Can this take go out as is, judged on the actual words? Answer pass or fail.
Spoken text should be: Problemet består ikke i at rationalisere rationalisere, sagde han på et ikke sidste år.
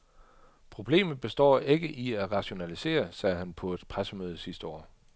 fail